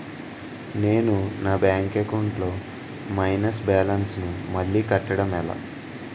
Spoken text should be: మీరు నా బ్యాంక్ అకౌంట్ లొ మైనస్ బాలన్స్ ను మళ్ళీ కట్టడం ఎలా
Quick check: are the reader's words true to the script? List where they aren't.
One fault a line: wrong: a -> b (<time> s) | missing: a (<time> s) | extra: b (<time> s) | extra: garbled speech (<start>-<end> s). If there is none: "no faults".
wrong: మీరు -> నేను (0.8 s)